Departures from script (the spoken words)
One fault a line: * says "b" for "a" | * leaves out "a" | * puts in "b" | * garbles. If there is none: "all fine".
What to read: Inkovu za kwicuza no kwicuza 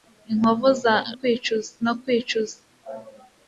all fine